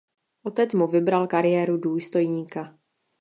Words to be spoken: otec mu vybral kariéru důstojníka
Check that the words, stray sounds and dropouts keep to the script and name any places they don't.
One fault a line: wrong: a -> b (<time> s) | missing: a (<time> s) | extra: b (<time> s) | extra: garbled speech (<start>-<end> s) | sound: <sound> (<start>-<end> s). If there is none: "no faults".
no faults